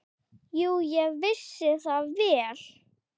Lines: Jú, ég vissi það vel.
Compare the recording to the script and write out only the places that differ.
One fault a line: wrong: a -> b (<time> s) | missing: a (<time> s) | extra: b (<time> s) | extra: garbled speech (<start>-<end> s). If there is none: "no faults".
no faults